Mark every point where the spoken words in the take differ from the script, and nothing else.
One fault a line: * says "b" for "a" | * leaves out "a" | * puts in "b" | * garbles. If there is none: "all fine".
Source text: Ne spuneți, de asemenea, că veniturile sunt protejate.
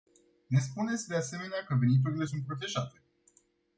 all fine